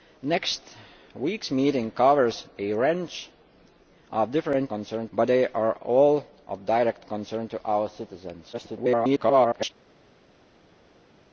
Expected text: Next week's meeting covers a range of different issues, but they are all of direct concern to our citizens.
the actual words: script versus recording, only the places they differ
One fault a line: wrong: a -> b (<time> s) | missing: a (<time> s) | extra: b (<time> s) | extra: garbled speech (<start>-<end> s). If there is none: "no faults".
wrong: issues -> concern (4.7 s)
extra: garbled speech (8.5-9.7 s)